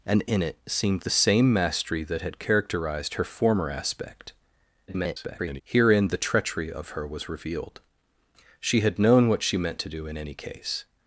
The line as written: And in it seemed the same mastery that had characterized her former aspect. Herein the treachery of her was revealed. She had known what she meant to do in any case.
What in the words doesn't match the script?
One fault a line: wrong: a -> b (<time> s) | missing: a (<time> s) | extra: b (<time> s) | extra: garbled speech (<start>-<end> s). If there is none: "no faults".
extra: garbled speech (4.9-5.6 s)